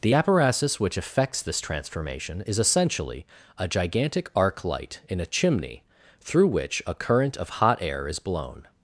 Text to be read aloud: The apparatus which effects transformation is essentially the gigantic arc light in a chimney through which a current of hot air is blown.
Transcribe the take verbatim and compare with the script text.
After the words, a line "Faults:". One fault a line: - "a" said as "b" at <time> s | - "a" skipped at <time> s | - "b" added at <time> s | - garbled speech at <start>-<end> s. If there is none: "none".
The apparatus which effects this transformation is essentially a gigantic arc light in a chimney through which a current of hot air is blown.
Faults:
- "this" added at 1.4 s
- "the" said as "a" at 3.6 s